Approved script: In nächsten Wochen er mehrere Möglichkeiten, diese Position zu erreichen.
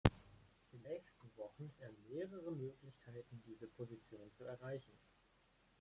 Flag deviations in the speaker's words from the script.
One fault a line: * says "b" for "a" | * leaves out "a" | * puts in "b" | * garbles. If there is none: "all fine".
all fine